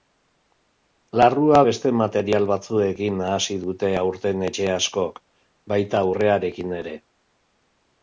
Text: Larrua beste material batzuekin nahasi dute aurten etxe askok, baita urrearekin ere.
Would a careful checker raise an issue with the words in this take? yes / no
no